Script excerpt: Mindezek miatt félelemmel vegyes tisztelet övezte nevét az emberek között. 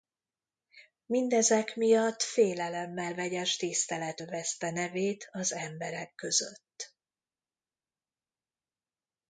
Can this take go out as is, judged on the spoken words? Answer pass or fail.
pass